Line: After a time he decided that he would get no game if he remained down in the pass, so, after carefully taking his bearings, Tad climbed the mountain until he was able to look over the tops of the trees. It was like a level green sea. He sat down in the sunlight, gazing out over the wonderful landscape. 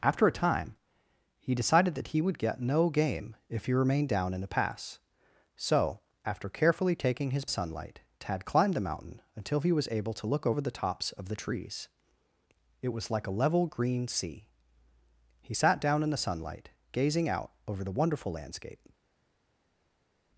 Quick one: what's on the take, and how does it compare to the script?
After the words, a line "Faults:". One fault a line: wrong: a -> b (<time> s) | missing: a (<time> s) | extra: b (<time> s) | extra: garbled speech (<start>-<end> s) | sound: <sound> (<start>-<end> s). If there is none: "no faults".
After a time he decided that he would get no game if he remained down in the pass, so, after carefully taking his sunlight, Tad climbed the mountain until he was able to look over the tops of the trees. It was like a level green sea. He sat down in the sunlight, gazing out over the wonderful landscape.
Faults:
wrong: bearings -> sunlight (7.5 s)